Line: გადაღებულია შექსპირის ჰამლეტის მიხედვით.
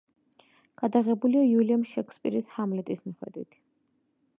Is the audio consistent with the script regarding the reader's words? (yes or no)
no